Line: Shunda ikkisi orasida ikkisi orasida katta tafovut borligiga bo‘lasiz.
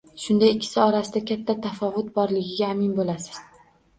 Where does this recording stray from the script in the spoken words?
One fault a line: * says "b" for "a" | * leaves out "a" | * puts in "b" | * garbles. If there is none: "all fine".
* leaves out "ikkisi orasida"
* puts in "amin"